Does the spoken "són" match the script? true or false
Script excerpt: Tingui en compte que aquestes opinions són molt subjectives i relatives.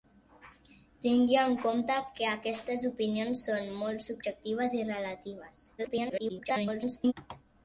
true